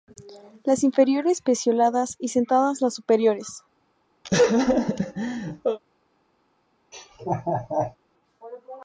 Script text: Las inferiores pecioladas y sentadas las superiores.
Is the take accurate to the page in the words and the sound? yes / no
no